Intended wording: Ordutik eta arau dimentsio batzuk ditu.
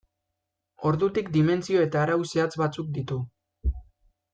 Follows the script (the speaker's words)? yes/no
no